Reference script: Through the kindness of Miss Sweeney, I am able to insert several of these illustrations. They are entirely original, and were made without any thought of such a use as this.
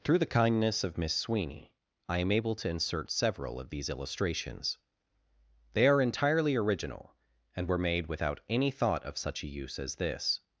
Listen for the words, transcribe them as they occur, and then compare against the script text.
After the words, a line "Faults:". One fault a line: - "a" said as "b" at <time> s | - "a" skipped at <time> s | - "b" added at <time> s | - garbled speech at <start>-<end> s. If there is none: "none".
Through the kindness of Miss Sweeney, I am able to insert several of these illustrations. They are entirely original, and were made without any thought of such a use as this.
Faults:
none